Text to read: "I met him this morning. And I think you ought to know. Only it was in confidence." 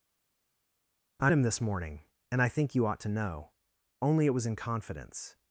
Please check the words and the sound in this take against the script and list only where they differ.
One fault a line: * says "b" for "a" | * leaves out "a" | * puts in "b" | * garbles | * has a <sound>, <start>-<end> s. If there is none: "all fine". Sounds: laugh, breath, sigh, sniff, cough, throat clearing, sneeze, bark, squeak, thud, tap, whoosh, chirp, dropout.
* leaves out "met"